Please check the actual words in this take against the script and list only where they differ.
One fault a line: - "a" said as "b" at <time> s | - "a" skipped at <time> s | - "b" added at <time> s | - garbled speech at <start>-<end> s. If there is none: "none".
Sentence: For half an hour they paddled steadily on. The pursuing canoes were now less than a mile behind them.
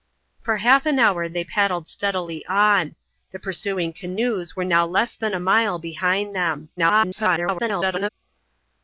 - garbled speech at 6.8-8.1 s